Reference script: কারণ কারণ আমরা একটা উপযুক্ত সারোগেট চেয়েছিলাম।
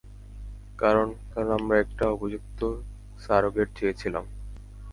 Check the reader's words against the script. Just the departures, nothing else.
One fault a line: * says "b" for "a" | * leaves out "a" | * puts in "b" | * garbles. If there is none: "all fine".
all fine